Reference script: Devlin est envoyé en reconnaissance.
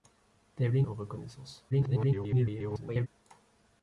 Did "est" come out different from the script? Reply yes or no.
yes